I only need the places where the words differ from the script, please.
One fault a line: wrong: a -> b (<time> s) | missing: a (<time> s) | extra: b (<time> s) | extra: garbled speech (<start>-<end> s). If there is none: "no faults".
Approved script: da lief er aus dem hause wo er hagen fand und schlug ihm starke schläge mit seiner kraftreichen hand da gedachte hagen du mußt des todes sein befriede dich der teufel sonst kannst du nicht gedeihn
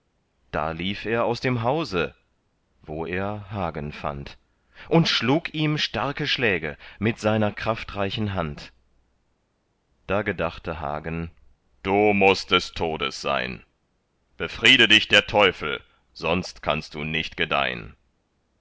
no faults